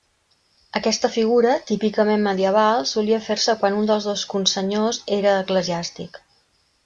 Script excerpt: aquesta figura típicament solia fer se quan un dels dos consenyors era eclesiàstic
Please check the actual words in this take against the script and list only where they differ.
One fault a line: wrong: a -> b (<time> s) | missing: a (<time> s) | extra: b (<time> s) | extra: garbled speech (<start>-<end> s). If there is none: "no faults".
extra: medieval (2.3 s)